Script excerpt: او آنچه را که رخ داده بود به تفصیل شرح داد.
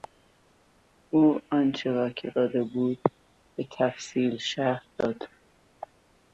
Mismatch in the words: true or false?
true